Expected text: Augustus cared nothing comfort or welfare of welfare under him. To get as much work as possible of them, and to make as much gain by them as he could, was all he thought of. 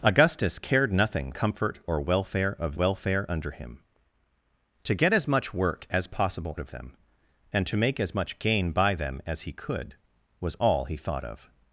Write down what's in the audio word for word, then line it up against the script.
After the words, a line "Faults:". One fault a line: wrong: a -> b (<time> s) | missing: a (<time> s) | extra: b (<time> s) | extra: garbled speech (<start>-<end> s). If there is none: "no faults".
Augustus cared nothing comfort or welfare of welfare under him. To get as much work as possible of them, and to make as much gain by them as he could, was all he thought of.
Faults:
no faults